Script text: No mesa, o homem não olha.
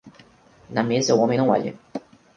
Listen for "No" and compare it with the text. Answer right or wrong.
wrong